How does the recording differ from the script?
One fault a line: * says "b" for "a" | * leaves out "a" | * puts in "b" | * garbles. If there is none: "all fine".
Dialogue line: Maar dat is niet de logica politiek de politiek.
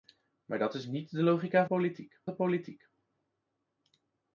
all fine